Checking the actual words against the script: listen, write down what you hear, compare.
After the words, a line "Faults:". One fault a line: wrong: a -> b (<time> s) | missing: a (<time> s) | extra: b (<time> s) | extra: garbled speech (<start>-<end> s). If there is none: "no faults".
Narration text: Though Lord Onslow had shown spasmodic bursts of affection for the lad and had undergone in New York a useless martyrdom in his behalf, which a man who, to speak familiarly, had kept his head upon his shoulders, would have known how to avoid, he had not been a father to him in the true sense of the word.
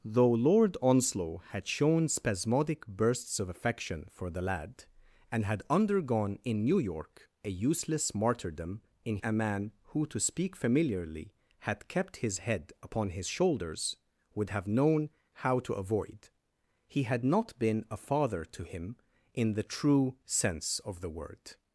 Though Lord Onslow had shown spasmodic bursts of affection for the lad and had undergone in New York a useless martyrdom in a man who, to speak familiarly, had kept his head upon his shoulders, would have known how to avoid, he had not been a father to him in the true sense of the word.
Faults:
missing: his behalf which (9.2 s)